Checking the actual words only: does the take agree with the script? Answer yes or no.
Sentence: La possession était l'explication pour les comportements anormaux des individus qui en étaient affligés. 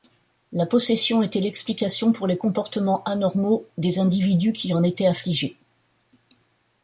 yes